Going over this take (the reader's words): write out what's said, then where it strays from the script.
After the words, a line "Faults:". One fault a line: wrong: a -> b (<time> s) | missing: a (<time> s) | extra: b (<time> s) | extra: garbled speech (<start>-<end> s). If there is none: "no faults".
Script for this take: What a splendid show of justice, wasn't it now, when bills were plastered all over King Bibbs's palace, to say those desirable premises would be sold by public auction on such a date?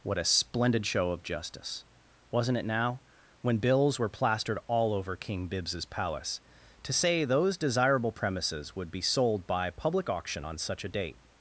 What a splendid show of justice, wasn't it now, when bills were plastered all over King Bibbs's palace, to say those desirable premises would be sold by public auction on such a date?
Faults:
no faults